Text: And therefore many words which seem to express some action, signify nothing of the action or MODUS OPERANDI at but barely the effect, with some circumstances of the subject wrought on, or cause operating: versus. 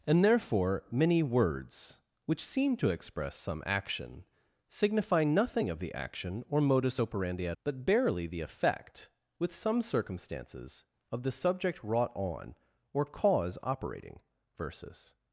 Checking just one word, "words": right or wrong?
right